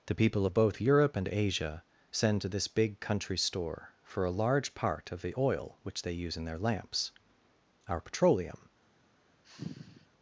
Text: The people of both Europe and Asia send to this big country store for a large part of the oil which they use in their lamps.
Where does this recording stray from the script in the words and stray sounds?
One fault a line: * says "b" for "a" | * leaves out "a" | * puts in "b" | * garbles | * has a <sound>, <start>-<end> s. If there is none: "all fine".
* puts in "Our petroleum"
* has a sigh, 9.4-10.1 s